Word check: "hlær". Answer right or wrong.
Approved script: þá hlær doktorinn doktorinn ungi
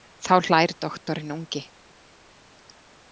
right